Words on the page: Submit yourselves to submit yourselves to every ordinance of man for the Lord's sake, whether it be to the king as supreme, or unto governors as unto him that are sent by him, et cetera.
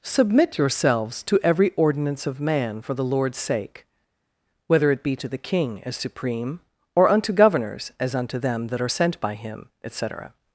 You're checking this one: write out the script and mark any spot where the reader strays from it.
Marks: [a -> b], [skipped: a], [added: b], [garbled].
Submit yourselves to [skipped: submit yourselves to] every ordinance of man for the Lord's sake, whether it be to the king as supreme, or unto governors as unto [him -> them] that are sent by him, et cetera.